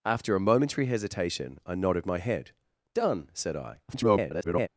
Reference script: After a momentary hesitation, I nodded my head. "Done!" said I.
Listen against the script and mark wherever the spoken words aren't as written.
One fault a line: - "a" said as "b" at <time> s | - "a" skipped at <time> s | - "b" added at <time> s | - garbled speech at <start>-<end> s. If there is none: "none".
- garbled speech at 3.9-4.7 s